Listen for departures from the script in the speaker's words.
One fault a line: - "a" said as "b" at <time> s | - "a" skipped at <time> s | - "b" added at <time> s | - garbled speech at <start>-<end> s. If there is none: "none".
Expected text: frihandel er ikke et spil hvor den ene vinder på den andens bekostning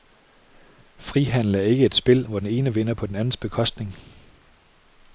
none